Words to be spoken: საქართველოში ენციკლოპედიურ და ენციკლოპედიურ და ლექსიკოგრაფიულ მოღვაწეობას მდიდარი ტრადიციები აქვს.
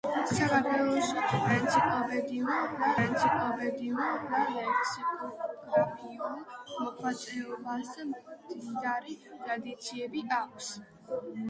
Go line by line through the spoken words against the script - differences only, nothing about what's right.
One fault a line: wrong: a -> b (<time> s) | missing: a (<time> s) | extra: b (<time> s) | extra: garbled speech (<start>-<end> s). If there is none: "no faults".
no faults